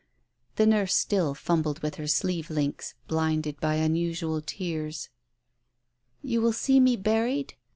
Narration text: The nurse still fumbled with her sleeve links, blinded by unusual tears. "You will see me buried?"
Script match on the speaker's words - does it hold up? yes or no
yes